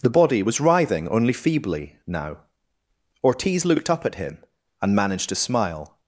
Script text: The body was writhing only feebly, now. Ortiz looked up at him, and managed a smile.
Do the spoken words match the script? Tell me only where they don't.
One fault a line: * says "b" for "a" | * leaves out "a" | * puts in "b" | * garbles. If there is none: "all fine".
* says "to" for "a"